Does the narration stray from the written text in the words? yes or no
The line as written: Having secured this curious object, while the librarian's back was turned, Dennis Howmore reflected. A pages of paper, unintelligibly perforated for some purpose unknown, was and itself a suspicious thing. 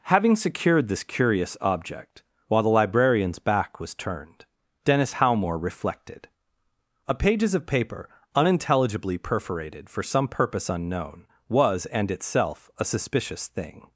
no